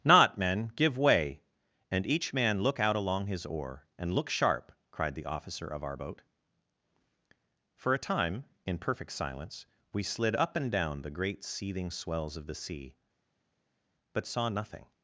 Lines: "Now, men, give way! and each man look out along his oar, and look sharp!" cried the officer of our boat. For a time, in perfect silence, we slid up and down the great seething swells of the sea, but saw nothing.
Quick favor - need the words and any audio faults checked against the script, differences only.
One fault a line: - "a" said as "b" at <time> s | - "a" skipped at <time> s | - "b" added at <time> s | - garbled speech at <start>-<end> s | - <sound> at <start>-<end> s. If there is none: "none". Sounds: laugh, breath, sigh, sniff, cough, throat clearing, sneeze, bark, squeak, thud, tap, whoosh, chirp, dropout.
- "Now" said as "Not" at 0.0 s